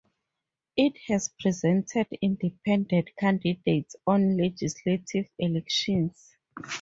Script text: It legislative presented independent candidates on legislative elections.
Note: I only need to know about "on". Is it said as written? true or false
true